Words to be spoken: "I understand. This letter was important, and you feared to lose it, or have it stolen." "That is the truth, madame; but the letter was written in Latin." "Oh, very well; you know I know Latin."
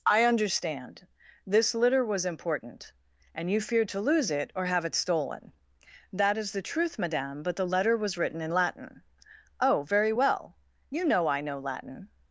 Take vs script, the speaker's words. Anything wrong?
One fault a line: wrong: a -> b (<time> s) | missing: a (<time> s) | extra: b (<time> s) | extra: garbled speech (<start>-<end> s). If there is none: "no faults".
wrong: letter -> litter (1.8 s)